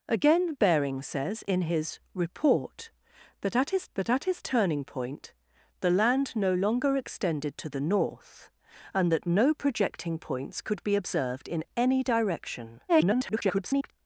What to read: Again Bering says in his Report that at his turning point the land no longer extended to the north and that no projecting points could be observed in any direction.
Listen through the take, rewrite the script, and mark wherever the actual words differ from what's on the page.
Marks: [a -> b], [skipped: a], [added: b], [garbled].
Again Bering says in his Report that at his [added: that at his] turning point the land no longer extended to the north and that no projecting points could be observed in any direction. [garbled]